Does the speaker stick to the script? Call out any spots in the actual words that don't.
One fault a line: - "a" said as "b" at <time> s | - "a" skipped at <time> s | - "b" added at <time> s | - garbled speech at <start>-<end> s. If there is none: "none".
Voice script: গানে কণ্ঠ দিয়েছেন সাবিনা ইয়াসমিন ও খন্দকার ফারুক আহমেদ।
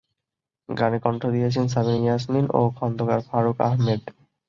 none